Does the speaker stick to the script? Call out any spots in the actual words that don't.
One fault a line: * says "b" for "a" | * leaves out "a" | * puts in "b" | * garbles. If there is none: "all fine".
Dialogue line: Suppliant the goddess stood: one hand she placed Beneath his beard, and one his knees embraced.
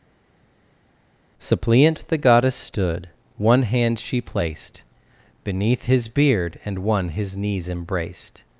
all fine